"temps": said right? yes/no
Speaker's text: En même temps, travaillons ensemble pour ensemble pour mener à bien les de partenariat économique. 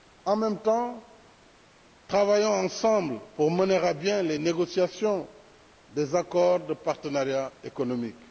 yes